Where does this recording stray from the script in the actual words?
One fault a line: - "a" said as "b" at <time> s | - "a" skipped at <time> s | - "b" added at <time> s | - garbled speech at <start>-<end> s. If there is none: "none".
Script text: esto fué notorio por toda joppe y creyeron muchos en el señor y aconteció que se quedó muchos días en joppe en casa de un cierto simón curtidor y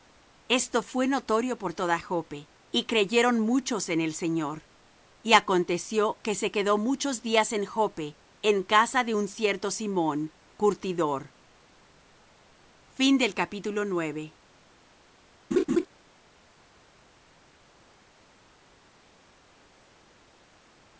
none